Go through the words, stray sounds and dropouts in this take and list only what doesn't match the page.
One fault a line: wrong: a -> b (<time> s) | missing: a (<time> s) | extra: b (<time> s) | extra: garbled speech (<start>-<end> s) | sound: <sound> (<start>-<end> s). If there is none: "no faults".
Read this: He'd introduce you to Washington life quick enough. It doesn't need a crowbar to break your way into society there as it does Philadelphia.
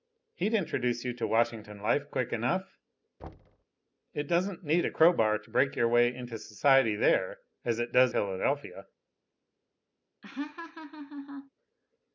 sound: thud (3.2-3.6 s)
sound: laugh (10.2-11.5 s)